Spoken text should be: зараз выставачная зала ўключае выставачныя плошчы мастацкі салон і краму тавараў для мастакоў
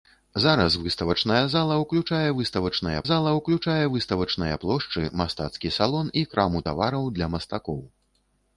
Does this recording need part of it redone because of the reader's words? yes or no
yes